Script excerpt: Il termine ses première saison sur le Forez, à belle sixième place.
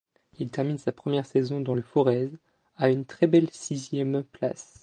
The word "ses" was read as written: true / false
false